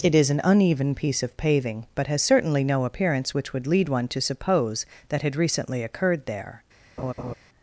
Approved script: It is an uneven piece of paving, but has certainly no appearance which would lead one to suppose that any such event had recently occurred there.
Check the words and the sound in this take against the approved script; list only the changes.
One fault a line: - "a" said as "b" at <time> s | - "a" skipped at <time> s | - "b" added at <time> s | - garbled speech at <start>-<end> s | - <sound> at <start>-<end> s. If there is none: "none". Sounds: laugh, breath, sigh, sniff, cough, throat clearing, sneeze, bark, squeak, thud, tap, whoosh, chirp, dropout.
- "any such event" skipped at 5.2 s
- laugh at 7.0-7.3 s